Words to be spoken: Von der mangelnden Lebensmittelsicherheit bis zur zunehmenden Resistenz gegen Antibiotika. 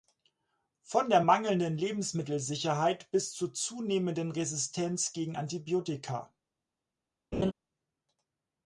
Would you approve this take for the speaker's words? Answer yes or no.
yes